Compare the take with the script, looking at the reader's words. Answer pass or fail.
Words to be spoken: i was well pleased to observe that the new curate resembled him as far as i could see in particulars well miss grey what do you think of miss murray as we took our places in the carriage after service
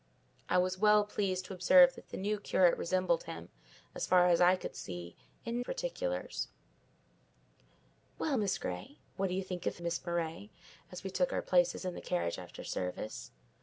pass